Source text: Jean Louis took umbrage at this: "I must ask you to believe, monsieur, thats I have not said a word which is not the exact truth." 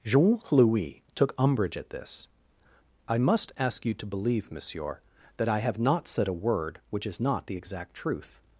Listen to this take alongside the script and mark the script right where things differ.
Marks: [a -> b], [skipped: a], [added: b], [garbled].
Jean Louis took umbrage at this: "I must ask you to believe, monsieur, [thats -> that] I have not said a word which is not the exact truth."